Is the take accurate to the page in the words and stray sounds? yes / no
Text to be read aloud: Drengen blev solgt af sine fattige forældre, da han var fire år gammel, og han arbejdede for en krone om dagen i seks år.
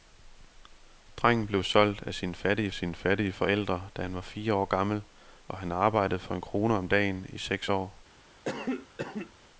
no